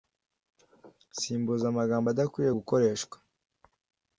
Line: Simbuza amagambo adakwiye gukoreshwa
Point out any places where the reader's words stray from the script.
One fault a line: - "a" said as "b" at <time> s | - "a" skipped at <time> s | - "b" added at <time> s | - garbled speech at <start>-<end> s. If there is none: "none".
none